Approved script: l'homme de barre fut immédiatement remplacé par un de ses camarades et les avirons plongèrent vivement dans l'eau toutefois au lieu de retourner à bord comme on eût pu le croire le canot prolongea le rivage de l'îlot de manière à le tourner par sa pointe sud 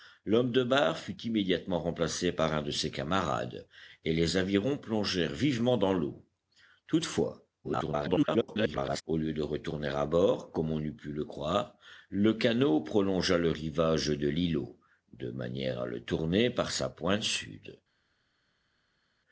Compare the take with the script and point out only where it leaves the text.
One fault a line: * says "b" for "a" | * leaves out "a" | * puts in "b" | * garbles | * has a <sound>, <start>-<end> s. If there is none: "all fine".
* garbles